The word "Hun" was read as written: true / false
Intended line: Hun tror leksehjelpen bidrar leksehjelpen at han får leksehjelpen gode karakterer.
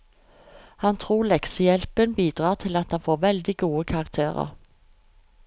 false